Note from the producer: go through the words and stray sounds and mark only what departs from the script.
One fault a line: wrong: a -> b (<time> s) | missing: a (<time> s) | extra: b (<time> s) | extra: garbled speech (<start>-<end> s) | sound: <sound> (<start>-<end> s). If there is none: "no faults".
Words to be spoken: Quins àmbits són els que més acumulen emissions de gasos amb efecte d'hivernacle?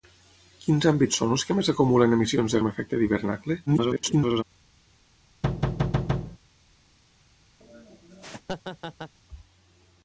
missing: gasos (2.6 s)
extra: garbled speech (3.7-4.4 s)
sound: thud (5.4-6.4 s)
sound: laugh (7.6-9.1 s)